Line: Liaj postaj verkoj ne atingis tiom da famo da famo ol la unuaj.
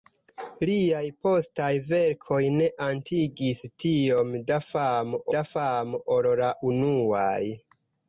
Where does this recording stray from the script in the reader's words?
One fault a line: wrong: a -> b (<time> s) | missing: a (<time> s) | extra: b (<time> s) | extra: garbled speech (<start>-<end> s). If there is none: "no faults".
no faults